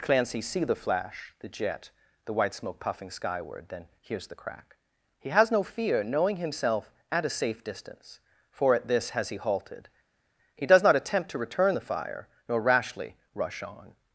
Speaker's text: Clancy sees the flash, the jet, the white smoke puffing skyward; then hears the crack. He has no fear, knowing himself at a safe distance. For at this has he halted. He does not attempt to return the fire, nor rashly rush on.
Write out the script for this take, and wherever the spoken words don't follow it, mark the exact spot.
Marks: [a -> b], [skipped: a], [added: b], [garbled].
Clancy [sees -> see] the flash, the jet, the white smoke puffing skyward; then hears the crack. He has no fear, knowing himself at a safe distance. For at this has he halted. He does not attempt to return the fire, nor rashly rush on.